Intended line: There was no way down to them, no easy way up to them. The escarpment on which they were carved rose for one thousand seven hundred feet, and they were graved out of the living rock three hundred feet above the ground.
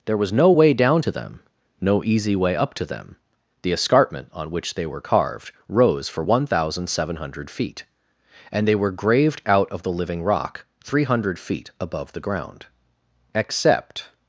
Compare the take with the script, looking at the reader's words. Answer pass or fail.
fail